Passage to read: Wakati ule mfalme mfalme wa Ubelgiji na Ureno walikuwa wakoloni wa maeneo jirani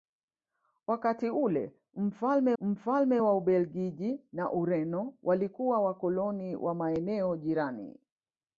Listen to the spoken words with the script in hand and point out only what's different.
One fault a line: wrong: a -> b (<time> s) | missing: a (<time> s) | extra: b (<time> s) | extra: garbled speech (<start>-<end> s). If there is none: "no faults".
no faults